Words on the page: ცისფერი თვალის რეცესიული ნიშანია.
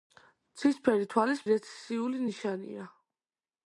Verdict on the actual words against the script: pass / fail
pass